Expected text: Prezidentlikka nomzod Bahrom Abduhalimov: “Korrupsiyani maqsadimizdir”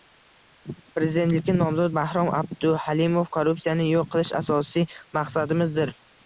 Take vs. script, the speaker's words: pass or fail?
fail